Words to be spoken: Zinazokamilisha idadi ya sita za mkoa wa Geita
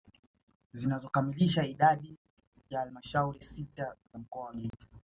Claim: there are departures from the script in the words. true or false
true